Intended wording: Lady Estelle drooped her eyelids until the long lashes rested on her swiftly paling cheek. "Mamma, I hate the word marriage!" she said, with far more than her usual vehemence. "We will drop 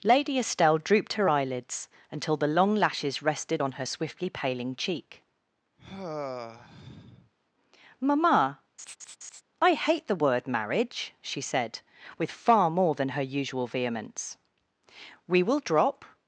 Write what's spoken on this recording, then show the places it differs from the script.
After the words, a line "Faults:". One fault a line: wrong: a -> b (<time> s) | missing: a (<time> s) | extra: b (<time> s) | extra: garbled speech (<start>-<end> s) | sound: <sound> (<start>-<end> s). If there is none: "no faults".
Lady Estelle drooped her eyelids until the long lashes rested on her swiftly paling cheek. "Mamma, I hate the word marriage!" she said, with far more than her usual vehemence. "We will drop
Faults:
sound: sigh (5.8-7.3 s)
sound: laugh (8.8-9.4 s)